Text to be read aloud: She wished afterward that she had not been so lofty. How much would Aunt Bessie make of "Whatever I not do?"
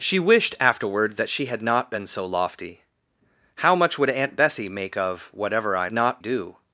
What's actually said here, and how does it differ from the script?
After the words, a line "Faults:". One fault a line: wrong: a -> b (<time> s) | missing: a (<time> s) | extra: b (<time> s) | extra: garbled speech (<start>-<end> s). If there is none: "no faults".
She wished afterward that she had not been so lofty. How much would Aunt Bessie make of "Whatever I not do?"
Faults:
no faults